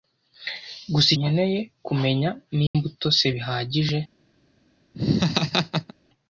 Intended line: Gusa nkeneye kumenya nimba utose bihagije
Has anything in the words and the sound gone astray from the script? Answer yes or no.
yes